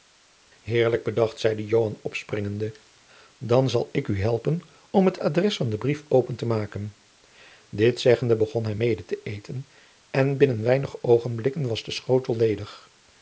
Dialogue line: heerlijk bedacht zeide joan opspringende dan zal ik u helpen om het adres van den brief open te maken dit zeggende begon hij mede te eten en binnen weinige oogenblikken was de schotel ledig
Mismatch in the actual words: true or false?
false